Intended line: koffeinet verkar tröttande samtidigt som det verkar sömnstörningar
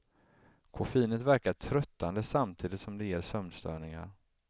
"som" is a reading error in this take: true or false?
false